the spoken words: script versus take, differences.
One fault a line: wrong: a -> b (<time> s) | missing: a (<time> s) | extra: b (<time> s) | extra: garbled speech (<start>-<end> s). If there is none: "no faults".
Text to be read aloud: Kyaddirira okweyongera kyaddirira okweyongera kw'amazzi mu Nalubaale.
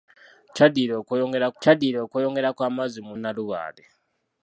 no faults